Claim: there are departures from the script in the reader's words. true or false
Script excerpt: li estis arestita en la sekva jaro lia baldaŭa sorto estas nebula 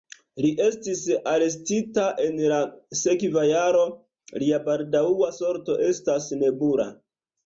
false